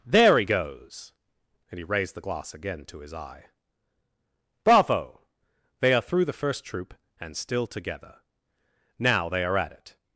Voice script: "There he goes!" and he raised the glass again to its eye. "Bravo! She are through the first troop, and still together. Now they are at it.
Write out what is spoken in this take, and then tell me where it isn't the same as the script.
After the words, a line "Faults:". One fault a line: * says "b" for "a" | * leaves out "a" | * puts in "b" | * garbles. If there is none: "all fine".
"There he goes!" and he raised the glass again to his eye. "Bravo! They are through the first troop, and still together. Now they are at it.
Faults:
* says "his" for "its"
* says "They" for "She"